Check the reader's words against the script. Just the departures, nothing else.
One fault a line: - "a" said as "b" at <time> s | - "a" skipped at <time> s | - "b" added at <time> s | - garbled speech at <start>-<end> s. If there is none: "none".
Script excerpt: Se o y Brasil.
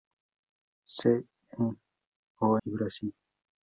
none